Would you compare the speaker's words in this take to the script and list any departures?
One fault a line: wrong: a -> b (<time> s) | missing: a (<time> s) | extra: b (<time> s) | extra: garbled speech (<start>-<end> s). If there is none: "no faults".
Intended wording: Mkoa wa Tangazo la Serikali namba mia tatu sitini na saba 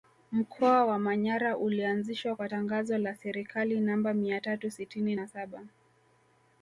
extra: Manyara ulianzishwa kwa (1.0 s)